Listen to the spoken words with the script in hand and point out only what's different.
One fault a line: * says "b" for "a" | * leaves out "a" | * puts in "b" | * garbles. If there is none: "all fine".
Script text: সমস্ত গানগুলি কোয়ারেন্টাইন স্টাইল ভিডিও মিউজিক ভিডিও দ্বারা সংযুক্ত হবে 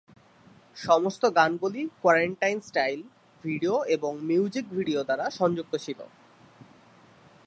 * puts in "এবং"
* says "ছিল" for "হবে"